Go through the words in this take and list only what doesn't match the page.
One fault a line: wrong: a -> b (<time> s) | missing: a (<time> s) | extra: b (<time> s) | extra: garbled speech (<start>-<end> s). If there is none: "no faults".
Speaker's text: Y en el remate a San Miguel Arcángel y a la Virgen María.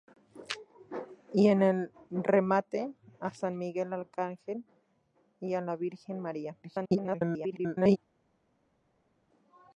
extra: garbled speech (6.6-8.0 s)